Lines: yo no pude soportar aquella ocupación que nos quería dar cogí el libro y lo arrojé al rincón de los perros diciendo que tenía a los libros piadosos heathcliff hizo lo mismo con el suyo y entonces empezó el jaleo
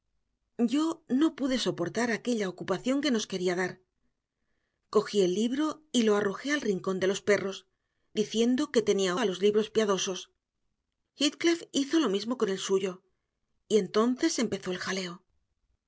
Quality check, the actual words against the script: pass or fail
pass